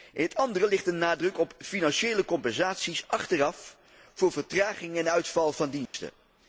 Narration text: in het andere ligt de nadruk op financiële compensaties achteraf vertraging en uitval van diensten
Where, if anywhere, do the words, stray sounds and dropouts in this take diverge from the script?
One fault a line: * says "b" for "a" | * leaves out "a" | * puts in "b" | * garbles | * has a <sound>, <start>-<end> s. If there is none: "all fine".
* puts in "voor"
* has a dropout, 5.9-5.9 s